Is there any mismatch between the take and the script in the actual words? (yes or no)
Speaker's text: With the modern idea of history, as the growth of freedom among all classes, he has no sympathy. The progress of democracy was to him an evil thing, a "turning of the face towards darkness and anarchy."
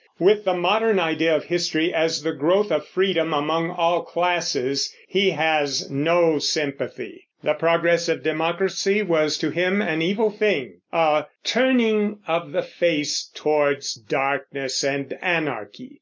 no